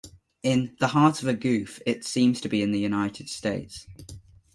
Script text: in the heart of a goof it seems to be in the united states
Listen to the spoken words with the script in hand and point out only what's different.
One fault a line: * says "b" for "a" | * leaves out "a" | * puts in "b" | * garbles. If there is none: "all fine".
all fine